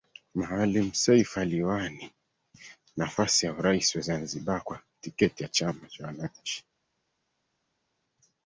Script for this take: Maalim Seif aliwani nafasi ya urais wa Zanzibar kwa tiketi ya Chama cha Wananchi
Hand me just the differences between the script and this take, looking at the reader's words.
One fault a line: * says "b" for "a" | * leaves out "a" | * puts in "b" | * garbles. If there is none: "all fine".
all fine